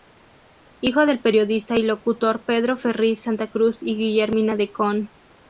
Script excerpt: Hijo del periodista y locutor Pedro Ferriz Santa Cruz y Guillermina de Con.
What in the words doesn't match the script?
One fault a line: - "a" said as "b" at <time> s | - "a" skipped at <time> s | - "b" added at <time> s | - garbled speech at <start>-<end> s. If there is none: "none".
none